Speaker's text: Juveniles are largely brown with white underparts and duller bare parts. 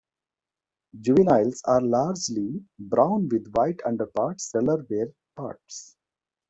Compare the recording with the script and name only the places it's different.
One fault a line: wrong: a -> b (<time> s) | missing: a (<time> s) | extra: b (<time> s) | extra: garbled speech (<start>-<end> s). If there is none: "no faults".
missing: and (4.5 s)